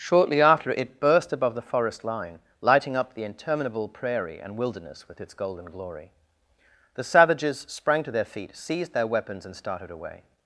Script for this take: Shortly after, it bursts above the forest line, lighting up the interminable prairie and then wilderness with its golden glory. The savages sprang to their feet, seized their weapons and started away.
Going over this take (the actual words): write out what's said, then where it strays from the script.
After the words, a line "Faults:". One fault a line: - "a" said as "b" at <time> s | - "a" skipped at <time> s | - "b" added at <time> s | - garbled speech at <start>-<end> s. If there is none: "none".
Shortly after, it burst above the forest line, lighting up the interminable prairie and wilderness with its golden glory. The savages sprang to their feet, seized their weapons and started away.
Faults:
- "bursts" said as "burst" at 1.0 s
- "then" skipped at 4.6 s